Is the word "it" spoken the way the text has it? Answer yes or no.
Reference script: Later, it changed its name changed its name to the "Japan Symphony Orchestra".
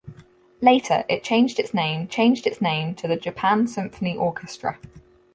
yes